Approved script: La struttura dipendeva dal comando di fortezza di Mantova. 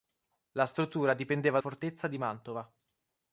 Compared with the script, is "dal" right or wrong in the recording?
wrong